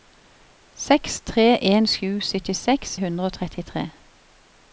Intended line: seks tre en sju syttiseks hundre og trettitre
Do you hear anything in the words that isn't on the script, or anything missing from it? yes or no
no